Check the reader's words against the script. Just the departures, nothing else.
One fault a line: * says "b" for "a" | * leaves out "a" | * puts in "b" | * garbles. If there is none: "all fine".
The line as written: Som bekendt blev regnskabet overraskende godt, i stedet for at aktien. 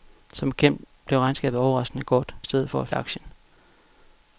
all fine